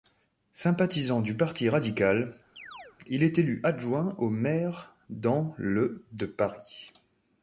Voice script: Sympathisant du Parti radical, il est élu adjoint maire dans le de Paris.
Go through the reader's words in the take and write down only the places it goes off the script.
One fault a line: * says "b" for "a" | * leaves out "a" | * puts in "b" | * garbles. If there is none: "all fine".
* puts in "au"